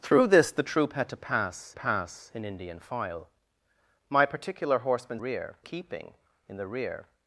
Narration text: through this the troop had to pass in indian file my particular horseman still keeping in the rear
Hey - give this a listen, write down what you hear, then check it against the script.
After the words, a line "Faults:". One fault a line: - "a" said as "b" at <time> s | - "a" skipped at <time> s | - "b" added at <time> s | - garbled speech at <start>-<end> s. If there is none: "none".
through this the troop had to pass pass in indian file my particular horseman rear keeping in the rear
Faults:
- "pass" added at 1.7 s
- "still" said as "rear" at 5.2 s